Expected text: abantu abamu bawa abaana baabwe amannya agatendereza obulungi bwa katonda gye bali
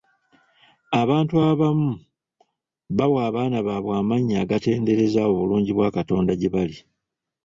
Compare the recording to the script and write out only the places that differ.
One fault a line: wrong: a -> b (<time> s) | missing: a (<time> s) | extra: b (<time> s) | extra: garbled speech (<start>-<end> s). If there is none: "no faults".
no faults